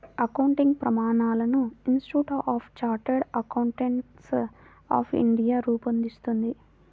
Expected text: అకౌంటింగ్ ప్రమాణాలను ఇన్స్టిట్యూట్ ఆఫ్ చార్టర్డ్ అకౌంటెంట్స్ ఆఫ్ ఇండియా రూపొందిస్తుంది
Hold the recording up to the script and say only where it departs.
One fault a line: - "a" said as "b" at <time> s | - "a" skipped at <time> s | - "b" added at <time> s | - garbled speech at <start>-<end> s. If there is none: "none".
none